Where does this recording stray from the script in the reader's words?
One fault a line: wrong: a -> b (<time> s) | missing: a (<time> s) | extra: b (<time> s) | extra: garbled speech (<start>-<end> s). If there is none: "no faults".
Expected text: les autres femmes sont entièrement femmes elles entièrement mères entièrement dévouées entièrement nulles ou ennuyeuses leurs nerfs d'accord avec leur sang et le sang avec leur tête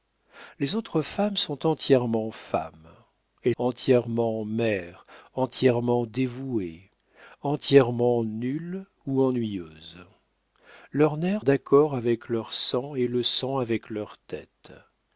no faults